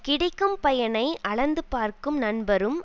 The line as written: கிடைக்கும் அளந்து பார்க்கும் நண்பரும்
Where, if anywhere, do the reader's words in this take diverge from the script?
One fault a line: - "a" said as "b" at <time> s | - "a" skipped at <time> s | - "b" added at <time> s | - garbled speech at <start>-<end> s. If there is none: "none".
- "பயனை" added at 0.6 s